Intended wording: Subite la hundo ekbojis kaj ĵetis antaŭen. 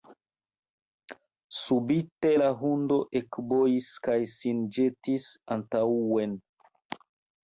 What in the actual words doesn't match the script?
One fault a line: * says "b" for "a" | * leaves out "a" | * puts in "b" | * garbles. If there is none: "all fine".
* puts in "sin"